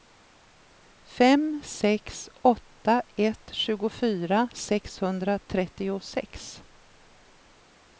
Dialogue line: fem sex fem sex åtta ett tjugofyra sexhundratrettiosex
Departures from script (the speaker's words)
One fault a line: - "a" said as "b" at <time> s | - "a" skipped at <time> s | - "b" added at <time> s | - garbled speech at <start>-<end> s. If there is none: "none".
- "fem sex" skipped at 2.3 s